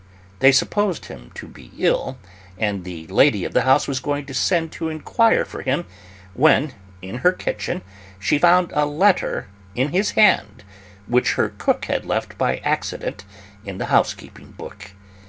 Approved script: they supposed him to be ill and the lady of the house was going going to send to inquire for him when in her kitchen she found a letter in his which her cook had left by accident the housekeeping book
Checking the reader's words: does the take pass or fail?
fail